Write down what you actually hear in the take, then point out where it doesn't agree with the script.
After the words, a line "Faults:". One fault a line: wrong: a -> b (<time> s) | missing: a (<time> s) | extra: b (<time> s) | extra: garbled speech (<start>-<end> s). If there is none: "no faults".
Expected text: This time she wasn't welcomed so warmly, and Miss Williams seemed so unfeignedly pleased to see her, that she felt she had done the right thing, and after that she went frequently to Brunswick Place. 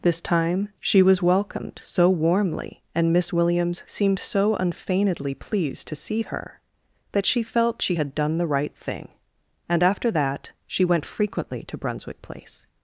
This time she was welcomed so warmly, and Miss Williams seemed so unfeignedly pleased to see her, that she felt she had done the right thing, and after that she went frequently to Brunswick Place.
Faults:
wrong: wasn't -> was (1.0 s)